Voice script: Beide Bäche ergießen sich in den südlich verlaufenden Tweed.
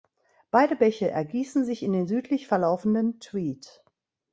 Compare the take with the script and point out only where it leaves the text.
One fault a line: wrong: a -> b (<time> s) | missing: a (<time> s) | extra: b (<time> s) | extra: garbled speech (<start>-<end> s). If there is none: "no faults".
no faults